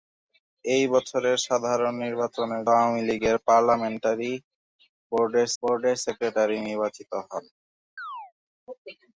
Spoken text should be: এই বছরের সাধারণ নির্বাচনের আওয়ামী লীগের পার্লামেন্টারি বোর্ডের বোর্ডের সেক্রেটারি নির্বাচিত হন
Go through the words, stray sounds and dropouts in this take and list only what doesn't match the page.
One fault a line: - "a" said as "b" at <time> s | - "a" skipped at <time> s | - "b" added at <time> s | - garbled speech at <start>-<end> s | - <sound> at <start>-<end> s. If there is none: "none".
- chirp at 8.0-8.3 s